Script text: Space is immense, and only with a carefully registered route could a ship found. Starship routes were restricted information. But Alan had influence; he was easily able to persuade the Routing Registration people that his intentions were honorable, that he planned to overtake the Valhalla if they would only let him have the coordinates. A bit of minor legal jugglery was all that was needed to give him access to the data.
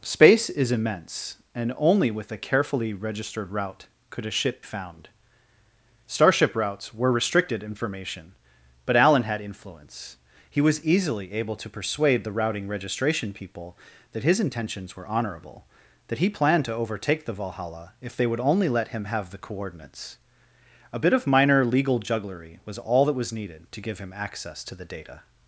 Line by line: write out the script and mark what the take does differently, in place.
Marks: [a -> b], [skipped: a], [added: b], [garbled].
Space is immense, and only with a carefully registered route could a ship found. Starship routes were restricted information. But Alan had influence; he was easily able to persuade the Routing Registration people that his intentions were honorable, that he planned to overtake the Valhalla if they would only let him have the coordinates. A bit of minor legal jugglery was all that was needed to give him access to the data.